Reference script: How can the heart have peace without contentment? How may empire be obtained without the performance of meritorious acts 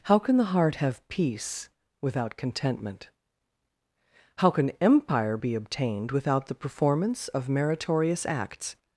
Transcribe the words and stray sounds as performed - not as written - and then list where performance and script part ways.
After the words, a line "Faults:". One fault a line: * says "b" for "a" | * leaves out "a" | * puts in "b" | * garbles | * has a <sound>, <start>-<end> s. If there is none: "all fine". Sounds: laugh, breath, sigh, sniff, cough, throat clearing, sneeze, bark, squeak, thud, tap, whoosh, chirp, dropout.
How can the heart have peace without contentment? How can empire be obtained without the performance of meritorious acts
Faults:
* says "can" for "may"